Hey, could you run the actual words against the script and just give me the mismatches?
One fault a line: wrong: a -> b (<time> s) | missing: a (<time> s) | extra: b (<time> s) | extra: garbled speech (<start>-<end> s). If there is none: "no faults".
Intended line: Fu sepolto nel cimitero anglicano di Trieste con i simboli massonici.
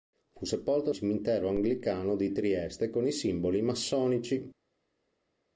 missing: nel (0.9 s)